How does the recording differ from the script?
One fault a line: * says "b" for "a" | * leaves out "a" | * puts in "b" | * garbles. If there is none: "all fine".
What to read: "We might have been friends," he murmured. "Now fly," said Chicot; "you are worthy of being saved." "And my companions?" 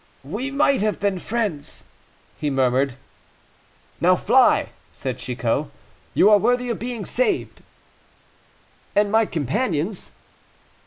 all fine